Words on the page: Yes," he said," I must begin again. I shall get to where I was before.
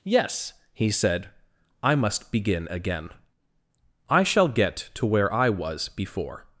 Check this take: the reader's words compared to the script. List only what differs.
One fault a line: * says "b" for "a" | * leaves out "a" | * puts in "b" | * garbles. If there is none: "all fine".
all fine